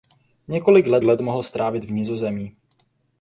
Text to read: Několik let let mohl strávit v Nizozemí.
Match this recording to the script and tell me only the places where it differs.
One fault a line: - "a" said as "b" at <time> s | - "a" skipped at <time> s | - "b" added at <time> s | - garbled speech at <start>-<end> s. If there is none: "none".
none